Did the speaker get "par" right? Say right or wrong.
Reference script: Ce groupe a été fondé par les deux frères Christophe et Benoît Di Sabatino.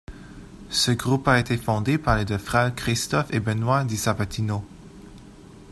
right